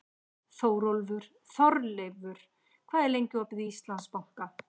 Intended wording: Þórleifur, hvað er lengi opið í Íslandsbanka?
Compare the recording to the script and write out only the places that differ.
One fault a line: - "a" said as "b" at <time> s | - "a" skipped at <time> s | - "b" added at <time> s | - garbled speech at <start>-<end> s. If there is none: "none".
none